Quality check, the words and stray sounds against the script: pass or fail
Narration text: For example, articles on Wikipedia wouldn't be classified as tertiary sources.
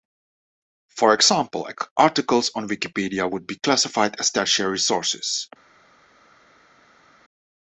fail